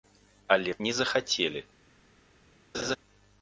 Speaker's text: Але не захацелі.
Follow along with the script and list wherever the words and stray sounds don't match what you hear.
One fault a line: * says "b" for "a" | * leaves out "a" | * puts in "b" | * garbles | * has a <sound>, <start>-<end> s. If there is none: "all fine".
* has a laugh, 2.7-3.0 s